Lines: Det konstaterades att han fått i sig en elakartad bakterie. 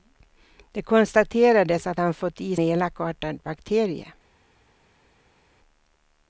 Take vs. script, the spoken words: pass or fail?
fail